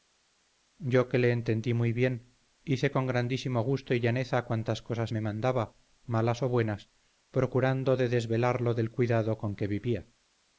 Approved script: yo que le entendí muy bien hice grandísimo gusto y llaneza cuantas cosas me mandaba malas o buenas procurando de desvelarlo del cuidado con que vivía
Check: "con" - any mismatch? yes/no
no